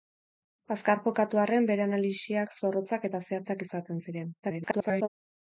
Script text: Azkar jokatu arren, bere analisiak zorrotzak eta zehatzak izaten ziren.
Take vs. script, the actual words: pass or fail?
fail